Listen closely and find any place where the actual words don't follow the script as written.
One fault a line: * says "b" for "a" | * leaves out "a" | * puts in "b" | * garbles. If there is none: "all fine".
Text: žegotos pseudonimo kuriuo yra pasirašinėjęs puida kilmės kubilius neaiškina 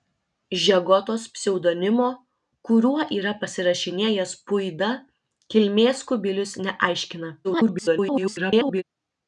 * garbles